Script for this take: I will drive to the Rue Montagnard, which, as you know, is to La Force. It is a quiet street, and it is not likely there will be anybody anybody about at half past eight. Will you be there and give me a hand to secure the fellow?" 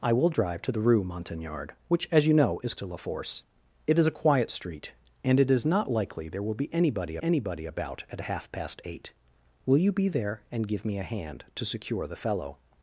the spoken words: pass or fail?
pass